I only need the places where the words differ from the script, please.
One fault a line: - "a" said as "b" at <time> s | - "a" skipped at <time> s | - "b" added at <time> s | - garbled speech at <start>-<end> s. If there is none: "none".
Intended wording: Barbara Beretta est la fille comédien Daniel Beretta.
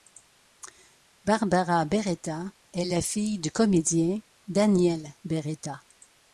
- "du" added at 3.4 s